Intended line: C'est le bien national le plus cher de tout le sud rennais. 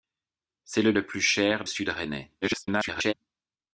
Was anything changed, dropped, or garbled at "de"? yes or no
yes